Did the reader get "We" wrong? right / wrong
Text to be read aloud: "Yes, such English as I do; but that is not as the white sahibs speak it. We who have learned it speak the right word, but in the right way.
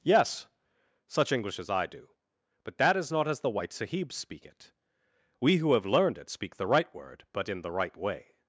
right